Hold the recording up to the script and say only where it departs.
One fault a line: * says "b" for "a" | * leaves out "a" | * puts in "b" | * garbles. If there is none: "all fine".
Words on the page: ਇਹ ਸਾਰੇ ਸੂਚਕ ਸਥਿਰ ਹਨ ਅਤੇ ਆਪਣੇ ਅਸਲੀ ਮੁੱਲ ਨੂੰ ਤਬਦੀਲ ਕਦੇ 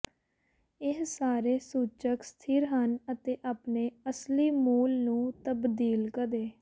all fine